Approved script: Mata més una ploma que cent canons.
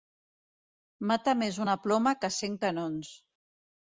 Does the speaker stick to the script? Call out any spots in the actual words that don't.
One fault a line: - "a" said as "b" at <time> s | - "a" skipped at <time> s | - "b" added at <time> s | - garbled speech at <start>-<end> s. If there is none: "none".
none